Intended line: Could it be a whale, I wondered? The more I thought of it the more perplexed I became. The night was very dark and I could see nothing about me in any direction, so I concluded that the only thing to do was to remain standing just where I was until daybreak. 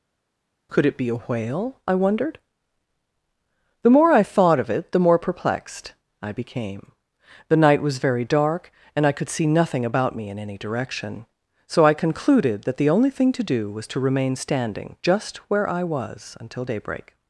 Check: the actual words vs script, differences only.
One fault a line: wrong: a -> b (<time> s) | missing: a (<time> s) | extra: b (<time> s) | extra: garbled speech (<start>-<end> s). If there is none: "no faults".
no faults